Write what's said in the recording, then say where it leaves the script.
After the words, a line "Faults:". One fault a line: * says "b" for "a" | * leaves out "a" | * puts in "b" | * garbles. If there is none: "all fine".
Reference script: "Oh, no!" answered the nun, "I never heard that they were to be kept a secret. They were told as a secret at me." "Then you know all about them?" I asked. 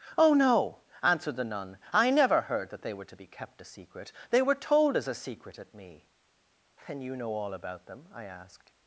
"Oh, no!" answered the nun, "I never heard that they were to be kept a secret. They were told as a secret at me." "Then you know all about them?" I asked.
Faults:
all fine